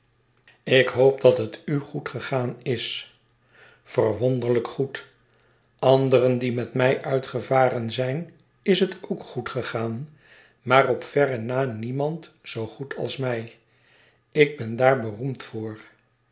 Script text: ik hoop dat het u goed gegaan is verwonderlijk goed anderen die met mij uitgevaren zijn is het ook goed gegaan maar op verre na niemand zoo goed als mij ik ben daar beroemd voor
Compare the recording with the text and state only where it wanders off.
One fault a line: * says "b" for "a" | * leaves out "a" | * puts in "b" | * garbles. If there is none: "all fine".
all fine